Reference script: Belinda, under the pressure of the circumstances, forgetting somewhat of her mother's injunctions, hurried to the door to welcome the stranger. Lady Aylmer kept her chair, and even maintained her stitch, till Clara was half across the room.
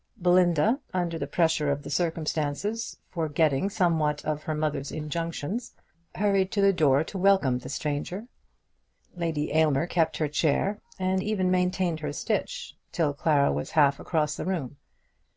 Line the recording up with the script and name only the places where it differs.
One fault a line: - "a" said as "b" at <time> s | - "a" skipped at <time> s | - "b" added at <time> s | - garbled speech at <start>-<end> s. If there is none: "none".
none